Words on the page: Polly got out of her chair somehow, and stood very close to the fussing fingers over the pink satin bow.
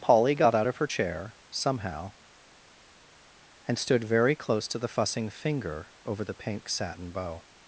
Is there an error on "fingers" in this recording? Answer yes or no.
yes